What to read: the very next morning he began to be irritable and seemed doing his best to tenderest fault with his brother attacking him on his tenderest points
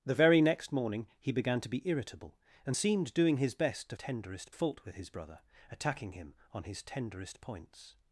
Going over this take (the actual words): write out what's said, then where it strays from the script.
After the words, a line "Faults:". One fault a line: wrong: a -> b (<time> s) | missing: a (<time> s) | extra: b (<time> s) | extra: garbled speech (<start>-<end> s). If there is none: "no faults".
the very next morning he began to be irritable and seemed doing his best to tenderest fault with his brother attacking him on his tenderest points
Faults:
no faults